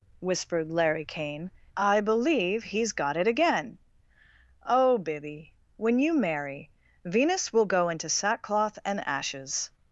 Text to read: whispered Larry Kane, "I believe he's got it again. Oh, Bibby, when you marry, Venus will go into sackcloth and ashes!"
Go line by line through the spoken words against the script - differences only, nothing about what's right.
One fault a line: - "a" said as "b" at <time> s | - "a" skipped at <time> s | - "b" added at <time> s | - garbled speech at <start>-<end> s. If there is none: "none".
none